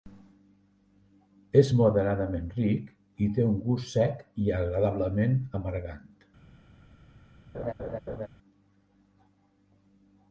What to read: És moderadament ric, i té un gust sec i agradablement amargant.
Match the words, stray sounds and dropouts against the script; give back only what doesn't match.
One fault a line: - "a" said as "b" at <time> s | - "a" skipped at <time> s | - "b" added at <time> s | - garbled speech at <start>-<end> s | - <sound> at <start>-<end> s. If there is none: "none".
- laugh at 7.5-8.3 s